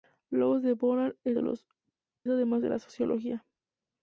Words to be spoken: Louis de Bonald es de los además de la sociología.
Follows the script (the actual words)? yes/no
yes